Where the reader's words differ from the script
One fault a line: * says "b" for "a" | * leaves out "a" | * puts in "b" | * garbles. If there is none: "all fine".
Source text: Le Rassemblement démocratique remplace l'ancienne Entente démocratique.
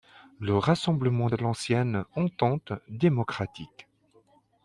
* leaves out "démocratique remplace"